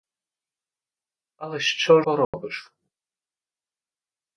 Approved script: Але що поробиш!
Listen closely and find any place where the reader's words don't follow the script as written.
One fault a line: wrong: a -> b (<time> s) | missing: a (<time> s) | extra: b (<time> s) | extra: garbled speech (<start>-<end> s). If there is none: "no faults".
no faults